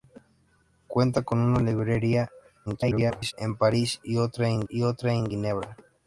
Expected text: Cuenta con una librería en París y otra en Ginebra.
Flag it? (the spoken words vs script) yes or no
yes